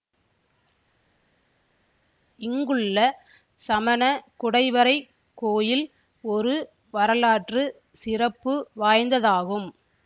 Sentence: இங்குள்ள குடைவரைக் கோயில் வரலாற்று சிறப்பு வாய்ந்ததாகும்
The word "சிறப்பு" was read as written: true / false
true